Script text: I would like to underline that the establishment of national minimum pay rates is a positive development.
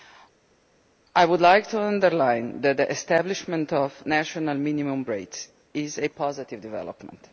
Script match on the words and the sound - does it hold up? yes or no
no